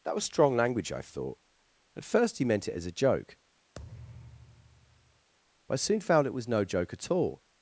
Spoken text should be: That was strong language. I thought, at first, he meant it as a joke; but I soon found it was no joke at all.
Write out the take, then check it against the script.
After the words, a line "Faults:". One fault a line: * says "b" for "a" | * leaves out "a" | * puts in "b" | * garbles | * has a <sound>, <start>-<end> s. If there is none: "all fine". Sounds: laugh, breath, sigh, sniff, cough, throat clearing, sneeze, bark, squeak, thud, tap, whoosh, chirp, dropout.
That was strong language. I thought, at first, he meant it as a joke; but I soon found it was no joke at all.
Faults:
* has a thud, 3.7-5.3 s